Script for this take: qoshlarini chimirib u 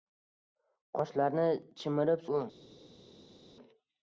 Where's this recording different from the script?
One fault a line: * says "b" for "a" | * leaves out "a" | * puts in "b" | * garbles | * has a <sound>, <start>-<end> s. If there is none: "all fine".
all fine